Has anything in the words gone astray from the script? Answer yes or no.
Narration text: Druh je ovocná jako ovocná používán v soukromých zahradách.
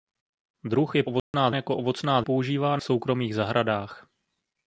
no